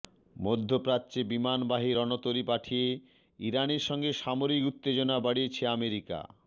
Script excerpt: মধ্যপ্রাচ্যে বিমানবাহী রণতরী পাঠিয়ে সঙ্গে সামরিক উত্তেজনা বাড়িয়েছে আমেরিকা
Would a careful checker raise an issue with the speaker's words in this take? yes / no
yes